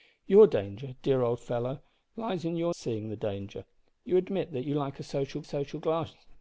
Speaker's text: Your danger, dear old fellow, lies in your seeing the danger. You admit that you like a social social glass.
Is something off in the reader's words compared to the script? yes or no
no